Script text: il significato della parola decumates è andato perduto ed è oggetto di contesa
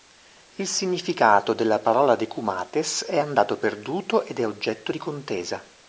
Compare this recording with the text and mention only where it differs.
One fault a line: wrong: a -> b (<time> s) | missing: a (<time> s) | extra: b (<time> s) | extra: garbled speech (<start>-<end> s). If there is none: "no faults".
no faults